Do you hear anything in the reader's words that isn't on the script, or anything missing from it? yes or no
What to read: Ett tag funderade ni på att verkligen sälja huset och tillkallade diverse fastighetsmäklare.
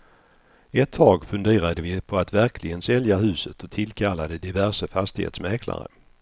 yes